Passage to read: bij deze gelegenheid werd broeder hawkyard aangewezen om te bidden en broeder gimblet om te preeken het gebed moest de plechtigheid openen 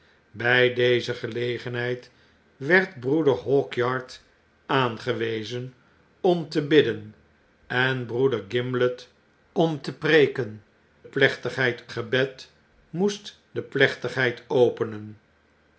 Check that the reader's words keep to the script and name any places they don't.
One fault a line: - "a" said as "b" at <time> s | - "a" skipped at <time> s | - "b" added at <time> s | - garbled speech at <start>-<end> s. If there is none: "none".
- "het" said as "plechtigheid" at 11.0 s